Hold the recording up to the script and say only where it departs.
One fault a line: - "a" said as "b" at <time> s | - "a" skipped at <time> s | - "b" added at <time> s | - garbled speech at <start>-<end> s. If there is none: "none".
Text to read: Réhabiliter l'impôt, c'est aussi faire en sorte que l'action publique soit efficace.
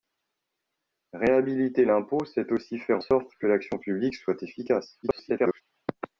- "en" skipped at 3.0 s
- garbled speech at 5.0-5.6 s